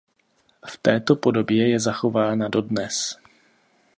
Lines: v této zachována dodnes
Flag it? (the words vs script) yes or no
yes